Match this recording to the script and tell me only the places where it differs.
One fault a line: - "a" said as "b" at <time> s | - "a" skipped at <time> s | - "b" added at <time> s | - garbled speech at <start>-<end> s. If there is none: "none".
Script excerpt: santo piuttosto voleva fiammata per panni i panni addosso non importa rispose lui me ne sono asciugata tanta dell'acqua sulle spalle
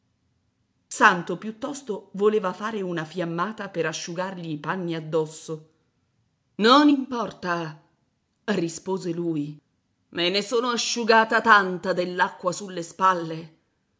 - "fare una" added at 2.5 s
- "panni" said as "asciugargli" at 3.9 s